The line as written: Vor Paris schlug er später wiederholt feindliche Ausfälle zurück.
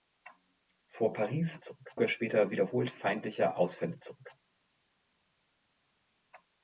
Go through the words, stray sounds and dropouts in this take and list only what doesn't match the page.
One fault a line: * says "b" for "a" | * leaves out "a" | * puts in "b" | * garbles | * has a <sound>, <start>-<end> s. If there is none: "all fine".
* says "zurück" for "schlug"